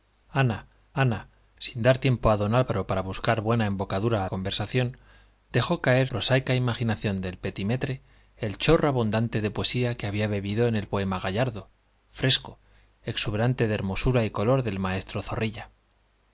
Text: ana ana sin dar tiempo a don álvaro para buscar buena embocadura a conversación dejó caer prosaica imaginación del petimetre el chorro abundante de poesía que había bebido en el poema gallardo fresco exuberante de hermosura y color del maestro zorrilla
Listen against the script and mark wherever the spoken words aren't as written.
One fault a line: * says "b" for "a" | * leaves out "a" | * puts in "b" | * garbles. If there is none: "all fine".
all fine